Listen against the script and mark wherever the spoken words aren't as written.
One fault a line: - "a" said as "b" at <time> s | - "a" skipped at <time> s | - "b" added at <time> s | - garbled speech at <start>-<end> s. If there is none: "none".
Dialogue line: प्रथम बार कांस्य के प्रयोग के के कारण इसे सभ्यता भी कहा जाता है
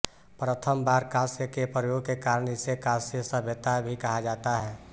- "के" skipped at 2.1 s
- "कांस्य" added at 2.8 s